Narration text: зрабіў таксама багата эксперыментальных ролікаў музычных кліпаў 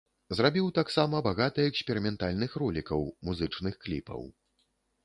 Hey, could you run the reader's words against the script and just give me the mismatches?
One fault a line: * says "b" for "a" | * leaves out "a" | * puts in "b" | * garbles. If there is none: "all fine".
all fine